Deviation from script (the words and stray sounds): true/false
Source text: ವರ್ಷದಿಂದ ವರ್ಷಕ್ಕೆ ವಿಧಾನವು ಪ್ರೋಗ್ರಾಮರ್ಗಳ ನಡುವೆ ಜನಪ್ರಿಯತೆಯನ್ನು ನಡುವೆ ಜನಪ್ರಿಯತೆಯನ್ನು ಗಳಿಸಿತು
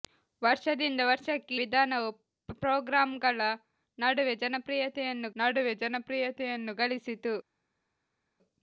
false